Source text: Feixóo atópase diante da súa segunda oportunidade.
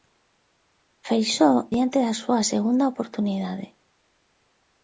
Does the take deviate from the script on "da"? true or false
false